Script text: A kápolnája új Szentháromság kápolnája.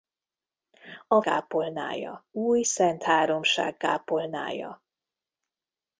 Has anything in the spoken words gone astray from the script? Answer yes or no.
no